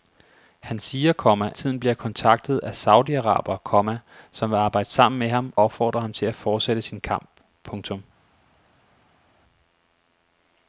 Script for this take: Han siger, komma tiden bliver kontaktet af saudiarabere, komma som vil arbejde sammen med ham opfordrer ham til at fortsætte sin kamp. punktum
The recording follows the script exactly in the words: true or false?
true